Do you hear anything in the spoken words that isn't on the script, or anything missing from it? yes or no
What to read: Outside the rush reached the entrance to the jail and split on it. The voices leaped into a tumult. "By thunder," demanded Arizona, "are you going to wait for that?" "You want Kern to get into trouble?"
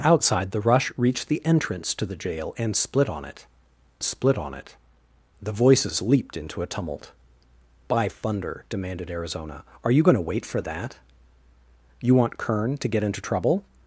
yes